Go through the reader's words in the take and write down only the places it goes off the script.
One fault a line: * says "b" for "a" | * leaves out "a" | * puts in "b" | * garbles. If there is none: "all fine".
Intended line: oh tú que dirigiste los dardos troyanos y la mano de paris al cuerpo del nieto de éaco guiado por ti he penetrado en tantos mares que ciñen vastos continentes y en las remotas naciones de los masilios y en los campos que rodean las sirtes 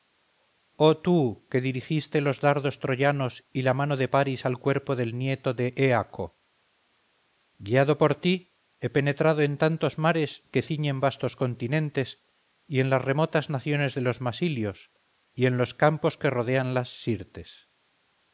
all fine